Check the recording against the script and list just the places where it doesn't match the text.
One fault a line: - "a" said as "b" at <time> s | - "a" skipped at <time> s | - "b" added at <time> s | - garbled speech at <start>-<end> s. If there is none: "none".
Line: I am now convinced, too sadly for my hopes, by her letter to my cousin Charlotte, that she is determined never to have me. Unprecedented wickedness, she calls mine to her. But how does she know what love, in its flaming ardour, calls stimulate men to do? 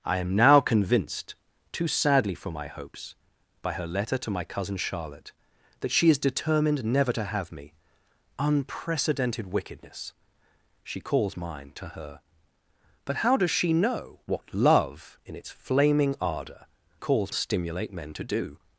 none